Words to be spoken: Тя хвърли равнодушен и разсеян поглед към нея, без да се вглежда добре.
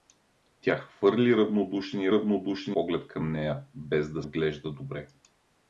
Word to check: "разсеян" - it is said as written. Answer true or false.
false